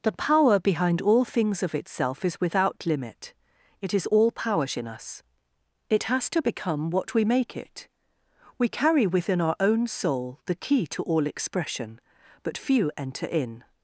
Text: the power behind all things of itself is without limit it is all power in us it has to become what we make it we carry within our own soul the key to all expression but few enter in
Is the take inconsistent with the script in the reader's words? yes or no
no